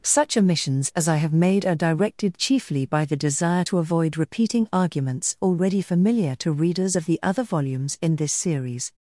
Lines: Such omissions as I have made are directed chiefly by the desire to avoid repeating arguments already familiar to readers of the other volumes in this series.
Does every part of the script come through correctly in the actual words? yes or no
yes